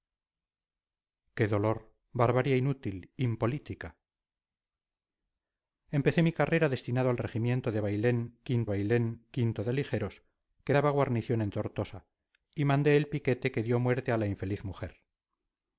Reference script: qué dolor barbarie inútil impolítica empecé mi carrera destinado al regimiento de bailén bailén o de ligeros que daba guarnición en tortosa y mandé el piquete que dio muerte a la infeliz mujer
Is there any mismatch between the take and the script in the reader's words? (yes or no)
no